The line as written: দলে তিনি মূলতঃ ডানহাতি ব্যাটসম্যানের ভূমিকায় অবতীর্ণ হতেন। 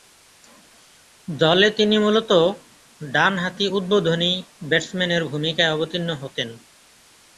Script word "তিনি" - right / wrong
right